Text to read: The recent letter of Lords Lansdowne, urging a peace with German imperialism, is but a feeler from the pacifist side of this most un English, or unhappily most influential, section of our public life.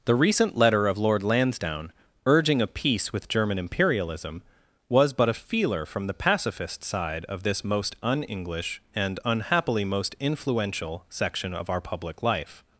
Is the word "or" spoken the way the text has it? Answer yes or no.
no